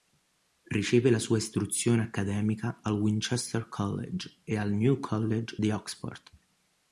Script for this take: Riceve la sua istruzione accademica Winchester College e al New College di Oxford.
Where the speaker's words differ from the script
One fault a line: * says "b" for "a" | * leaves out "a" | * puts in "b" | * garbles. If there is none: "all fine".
* puts in "al"